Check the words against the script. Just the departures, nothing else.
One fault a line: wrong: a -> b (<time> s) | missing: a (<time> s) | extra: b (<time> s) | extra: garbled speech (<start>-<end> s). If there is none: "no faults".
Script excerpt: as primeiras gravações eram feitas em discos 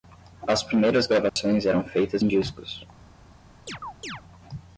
no faults